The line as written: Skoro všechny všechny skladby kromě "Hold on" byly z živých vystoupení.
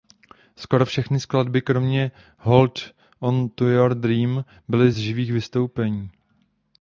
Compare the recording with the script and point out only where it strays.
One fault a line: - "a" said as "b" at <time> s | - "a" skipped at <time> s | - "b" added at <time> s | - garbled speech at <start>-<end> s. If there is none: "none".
- "všechny" skipped at 1.2 s
- "to Your Dream" added at 3.5 s